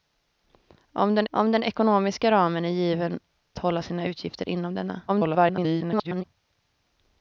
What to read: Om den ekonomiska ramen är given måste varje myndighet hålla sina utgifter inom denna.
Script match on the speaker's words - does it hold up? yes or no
no